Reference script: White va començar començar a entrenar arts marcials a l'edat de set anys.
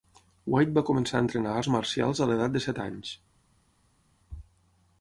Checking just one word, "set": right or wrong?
right